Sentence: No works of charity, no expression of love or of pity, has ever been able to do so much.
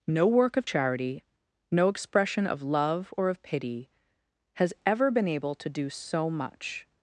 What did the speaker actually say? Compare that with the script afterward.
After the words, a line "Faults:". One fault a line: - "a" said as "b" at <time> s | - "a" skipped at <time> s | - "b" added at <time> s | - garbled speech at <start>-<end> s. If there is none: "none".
No work of charity, no expression of love or of pity, has ever been able to do so much.
Faults:
- "works" said as "work" at 0.3 s